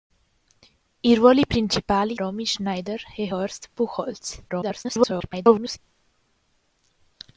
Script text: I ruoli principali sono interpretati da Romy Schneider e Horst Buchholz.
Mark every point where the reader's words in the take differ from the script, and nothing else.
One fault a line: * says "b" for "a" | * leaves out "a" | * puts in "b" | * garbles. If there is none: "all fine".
* leaves out "sono interpretati da"
* garbles